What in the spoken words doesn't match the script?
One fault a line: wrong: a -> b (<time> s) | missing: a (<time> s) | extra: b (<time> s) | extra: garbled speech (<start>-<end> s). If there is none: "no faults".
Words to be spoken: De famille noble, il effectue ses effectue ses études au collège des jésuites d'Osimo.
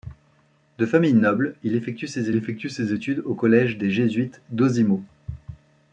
no faults